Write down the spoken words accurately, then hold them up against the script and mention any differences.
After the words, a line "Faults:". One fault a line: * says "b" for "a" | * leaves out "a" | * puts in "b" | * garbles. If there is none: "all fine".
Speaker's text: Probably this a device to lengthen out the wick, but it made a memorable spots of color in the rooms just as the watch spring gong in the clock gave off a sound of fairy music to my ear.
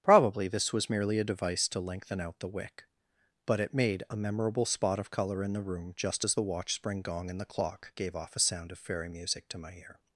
Probably this was merely a device to lengthen out the wick, but it made a memorable spot of color in the room just as the watch spring gong in the clock gave off a sound of fairy music to my ear.
Faults:
* puts in "was merely"
* says "spot" for "spots"
* says "room" for "rooms"